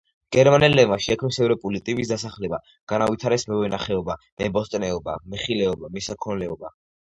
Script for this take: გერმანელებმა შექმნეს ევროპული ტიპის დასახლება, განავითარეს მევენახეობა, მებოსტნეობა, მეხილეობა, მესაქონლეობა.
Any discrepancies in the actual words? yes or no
no